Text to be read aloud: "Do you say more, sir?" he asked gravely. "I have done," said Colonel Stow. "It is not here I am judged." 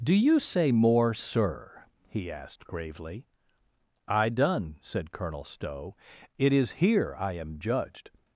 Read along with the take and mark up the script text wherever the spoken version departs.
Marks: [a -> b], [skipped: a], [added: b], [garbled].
"Do you say more, sir?" he asked gravely. "I [skipped: have] done," said Colonel Stow. "It is [skipped: not] here I am judged."